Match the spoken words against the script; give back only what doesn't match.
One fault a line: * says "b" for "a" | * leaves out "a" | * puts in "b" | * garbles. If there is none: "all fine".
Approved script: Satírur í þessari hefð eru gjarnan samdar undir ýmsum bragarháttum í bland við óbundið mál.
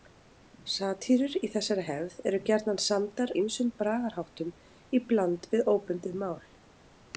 * leaves out "undir"